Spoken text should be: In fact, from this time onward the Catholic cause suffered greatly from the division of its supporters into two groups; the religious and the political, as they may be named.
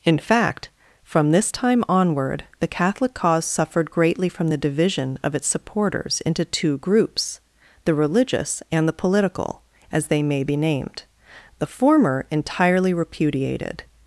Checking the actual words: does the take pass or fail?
fail